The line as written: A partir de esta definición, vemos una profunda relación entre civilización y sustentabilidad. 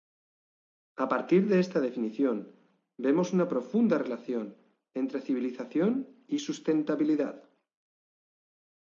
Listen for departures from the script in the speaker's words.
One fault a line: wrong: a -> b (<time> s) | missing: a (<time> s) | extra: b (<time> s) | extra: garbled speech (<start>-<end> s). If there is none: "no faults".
no faults